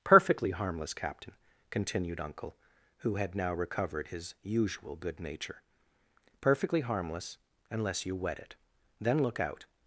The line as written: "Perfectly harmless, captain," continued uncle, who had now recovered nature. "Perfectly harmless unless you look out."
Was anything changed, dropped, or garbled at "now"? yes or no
no